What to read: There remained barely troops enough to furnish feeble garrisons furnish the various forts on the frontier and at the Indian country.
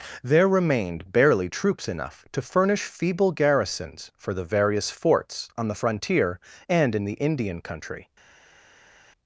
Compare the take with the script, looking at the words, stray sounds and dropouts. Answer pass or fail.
fail